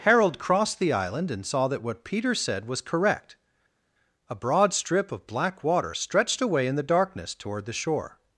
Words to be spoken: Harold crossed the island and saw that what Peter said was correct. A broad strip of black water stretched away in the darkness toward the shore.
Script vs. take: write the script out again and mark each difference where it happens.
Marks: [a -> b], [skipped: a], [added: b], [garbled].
Harold crossed the island and saw that what Peter said was correct. A broad strip of black water stretched away in the darkness toward the shore.